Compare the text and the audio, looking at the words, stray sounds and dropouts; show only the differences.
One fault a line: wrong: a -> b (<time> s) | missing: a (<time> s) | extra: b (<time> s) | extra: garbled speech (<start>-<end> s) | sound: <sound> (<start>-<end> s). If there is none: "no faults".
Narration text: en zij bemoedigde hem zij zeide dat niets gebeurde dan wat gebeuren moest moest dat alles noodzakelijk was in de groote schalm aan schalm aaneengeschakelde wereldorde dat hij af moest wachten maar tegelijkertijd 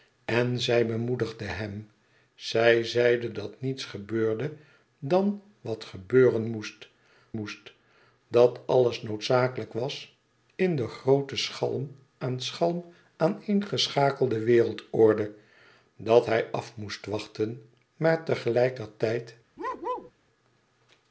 sound: bark (19.6-20.1 s)